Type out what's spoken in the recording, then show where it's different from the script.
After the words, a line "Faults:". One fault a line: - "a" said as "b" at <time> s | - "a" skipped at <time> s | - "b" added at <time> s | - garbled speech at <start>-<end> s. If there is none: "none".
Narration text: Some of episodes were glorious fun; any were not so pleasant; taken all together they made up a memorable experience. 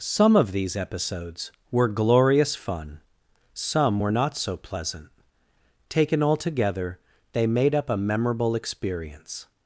Some of these episodes were glorious fun; some were not so pleasant; taken all together they made up a memorable experience.
Faults:
- "these" added at 0.5 s
- "any" said as "some" at 3.5 s